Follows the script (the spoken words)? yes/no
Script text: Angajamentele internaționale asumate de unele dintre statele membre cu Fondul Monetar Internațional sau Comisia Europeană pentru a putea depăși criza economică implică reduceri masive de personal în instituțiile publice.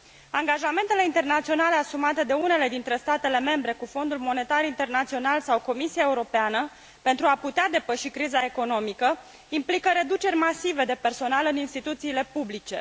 yes